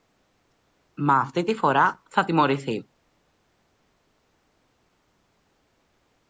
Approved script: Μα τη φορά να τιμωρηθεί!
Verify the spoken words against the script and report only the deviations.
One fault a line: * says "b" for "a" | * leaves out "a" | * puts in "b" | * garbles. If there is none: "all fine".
* puts in "αυτή"
* says "θα" for "να"